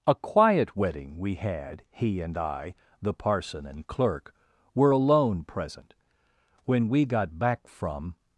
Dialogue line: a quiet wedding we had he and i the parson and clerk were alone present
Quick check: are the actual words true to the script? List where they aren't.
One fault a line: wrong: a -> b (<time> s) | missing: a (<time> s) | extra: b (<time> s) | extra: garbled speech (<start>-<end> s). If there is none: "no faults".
extra: when we got back from (6.6 s)